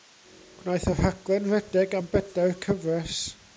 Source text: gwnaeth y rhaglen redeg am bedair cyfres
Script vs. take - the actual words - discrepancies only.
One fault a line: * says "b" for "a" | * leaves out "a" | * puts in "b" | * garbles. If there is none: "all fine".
all fine